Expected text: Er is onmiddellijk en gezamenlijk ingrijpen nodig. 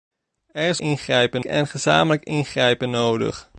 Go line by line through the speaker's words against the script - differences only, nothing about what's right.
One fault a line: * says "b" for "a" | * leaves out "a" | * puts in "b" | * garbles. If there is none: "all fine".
* says "ingrijpen" for "onmiddellijk"